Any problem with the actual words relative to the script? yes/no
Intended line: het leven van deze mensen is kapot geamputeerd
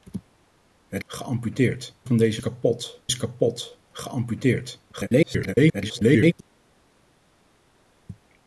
yes